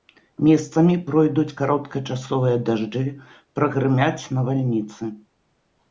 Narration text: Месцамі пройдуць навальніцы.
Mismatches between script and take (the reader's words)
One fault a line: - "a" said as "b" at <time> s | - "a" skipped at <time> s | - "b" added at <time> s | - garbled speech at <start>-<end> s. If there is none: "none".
- "кароткачасовыя дажджы прагрымяць" added at 1.6 s